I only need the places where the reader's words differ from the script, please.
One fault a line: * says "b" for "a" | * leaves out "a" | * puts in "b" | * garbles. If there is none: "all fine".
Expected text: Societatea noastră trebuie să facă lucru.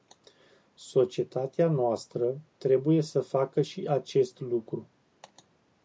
* puts in "și acest"